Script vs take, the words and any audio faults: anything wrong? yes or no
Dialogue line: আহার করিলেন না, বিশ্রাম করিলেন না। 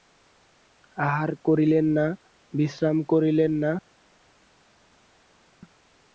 no